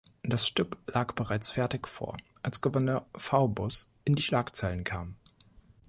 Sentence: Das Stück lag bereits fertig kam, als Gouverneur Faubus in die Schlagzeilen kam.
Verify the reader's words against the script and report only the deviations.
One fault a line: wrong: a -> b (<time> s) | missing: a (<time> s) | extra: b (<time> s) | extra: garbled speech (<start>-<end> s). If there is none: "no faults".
wrong: kam -> vor (1.9 s)